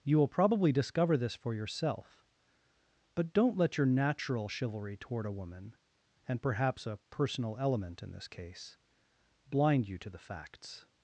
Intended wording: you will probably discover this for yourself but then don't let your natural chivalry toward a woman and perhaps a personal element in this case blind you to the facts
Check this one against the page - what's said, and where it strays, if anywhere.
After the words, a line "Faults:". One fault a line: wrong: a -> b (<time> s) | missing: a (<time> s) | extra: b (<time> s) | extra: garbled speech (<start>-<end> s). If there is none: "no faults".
you will probably discover this for yourself but don't let your natural chivalry toward a woman and perhaps a personal element in this case blind you to the facts
Faults:
missing: then (3.3 s)